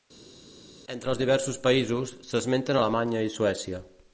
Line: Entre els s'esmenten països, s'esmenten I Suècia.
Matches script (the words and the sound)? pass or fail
fail